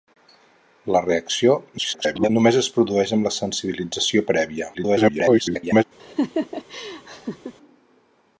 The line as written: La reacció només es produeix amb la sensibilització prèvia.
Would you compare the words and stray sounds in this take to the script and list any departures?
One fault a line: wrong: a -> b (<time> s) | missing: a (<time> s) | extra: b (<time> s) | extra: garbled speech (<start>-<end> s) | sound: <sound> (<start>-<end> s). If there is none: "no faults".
extra: garbled speech (1.8-2.3 s)
extra: garbled speech (4.7-5.8 s)
sound: laugh (6.0-7.5 s)